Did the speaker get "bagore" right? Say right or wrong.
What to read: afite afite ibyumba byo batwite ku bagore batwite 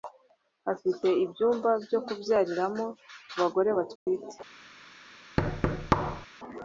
right